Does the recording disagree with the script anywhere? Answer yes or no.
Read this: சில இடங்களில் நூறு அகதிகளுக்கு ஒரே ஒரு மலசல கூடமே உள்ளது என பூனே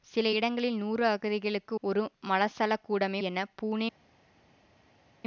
yes